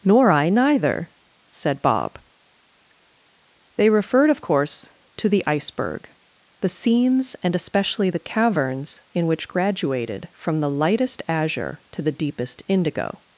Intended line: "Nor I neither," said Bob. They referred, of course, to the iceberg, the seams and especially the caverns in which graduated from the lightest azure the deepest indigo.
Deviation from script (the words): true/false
true